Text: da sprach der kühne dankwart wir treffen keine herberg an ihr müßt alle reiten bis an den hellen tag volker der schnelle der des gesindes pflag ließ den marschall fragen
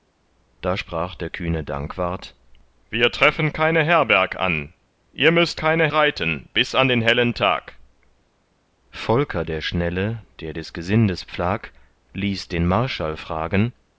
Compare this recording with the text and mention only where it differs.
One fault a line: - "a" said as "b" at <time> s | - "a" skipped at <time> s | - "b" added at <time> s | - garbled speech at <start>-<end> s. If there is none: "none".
- "alle" said as "keine" at 5.6 s